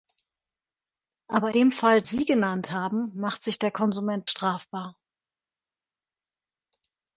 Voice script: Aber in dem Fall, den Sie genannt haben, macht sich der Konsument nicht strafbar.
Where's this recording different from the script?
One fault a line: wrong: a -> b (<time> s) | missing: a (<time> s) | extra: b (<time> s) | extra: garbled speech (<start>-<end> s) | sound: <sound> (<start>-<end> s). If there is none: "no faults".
missing: in (1.5 s)
missing: den (2.0 s)
missing: nicht (4.3 s)